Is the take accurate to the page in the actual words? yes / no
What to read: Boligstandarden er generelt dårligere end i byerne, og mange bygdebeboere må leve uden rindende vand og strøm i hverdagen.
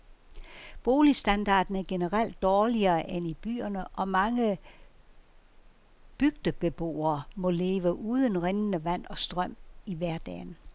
yes